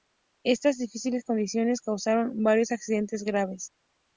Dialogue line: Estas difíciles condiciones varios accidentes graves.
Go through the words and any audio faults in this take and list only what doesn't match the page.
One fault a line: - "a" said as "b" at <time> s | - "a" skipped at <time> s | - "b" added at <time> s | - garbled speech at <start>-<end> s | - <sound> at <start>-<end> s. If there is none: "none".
- "causaron" added at 1.8 s